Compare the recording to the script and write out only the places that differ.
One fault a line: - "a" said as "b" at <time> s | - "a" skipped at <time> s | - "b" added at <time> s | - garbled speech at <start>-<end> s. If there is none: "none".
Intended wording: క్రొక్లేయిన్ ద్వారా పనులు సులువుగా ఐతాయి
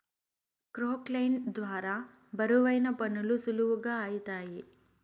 - "బరువైన" added at 2.3 s